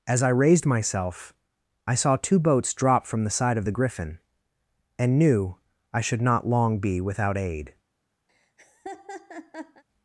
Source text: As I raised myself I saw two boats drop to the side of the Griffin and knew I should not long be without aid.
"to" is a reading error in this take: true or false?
true